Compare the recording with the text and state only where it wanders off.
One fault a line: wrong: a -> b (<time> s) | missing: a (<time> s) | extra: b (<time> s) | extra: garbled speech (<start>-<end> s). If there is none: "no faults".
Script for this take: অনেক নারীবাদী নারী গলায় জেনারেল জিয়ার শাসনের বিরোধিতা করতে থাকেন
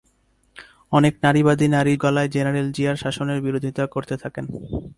no faults